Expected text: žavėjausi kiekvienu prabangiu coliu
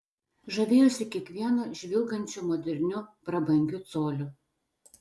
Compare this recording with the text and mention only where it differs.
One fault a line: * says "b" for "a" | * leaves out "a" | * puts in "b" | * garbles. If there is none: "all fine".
* puts in "žvilgančiu moderniu"